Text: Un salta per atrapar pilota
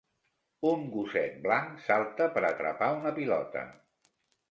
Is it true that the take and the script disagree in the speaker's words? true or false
true